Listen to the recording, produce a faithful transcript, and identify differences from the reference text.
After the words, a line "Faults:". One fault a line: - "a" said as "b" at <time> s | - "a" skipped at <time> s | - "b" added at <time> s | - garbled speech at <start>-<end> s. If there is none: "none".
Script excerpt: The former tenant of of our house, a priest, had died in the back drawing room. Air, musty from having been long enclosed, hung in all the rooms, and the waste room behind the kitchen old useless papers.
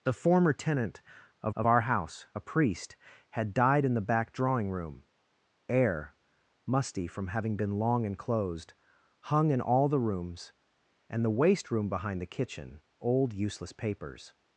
The former tenant of of our house, a priest, had died in the back drawing room. Air, musty from having been long enclosed, hung in all the rooms, and the waste room behind the kitchen old useless papers.
Faults:
none